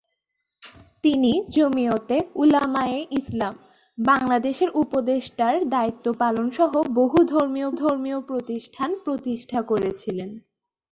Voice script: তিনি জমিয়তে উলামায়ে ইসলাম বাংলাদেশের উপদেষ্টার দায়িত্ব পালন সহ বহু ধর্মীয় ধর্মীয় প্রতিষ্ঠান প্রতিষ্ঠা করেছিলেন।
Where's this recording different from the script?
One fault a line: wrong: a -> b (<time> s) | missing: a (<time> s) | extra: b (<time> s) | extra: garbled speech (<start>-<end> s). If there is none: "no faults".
no faults